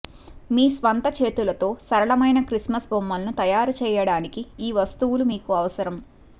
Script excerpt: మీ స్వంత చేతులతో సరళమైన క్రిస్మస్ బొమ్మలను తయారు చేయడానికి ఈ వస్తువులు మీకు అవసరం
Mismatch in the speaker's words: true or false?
false